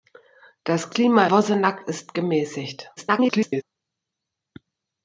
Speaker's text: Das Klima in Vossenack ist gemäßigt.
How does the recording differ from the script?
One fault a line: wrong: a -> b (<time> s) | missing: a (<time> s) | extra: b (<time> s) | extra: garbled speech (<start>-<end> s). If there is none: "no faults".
missing: in (1.3 s)
extra: garbled speech (3.0-3.6 s)